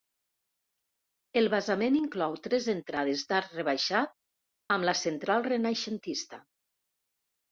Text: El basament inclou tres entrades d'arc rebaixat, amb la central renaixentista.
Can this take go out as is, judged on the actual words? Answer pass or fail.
pass